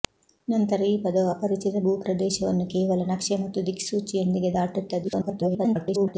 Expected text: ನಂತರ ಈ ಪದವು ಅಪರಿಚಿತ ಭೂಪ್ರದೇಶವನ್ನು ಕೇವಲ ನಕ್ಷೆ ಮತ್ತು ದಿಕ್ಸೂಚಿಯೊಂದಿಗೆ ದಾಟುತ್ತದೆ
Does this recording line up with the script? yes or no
no